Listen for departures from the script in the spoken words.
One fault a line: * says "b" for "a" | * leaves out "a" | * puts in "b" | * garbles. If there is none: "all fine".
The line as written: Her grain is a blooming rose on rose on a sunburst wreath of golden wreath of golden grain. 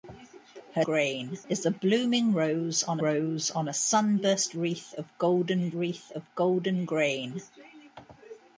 all fine